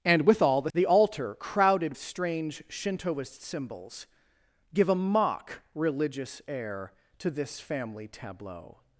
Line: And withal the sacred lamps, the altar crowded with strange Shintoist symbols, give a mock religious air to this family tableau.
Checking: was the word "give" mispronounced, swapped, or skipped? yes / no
no